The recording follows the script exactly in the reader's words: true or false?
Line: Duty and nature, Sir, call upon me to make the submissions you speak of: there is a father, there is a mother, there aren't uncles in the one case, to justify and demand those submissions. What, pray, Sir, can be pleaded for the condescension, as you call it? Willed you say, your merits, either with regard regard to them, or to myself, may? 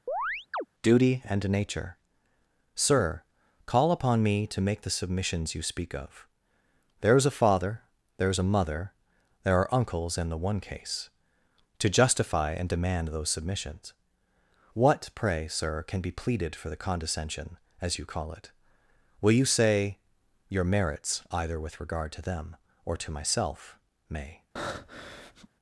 false